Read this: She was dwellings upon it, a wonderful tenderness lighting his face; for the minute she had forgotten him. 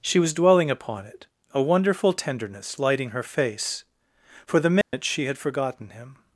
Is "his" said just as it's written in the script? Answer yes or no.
no